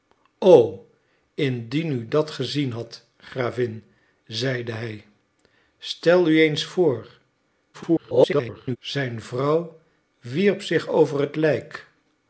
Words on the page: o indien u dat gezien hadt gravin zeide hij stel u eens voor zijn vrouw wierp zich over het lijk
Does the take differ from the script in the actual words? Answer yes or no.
yes